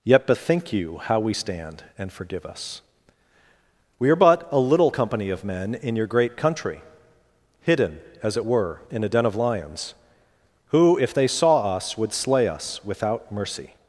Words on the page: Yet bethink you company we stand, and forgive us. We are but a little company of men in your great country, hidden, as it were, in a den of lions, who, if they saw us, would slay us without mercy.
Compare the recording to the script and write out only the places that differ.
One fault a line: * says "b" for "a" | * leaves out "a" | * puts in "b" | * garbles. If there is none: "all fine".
* says "how" for "company"